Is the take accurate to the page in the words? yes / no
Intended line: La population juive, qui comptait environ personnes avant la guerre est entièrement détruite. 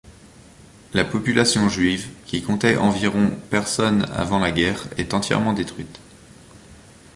yes